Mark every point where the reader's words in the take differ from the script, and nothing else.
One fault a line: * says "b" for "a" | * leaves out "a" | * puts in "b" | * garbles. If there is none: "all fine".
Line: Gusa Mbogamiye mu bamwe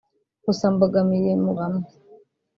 all fine